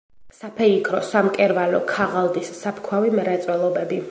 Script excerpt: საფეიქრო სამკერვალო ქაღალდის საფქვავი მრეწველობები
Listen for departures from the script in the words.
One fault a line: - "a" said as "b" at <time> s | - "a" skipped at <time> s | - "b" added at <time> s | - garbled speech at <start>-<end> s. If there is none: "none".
none